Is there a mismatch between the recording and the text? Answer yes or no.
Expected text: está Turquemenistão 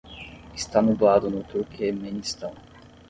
yes